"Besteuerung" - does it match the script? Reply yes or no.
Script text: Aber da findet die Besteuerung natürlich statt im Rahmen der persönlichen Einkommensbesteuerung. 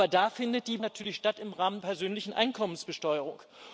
no